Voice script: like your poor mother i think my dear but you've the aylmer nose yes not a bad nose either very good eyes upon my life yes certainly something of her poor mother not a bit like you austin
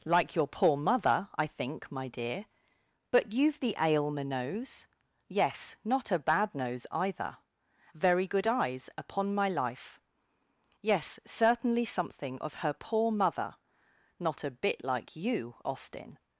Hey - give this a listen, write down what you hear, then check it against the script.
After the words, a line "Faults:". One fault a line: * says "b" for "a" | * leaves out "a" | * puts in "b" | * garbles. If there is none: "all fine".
like your poor mother i think my dear but you've the aylmer nose yes not a bad nose either very good eyes upon my life yes certainly something of her poor mother not a bit like you austin
Faults:
all fine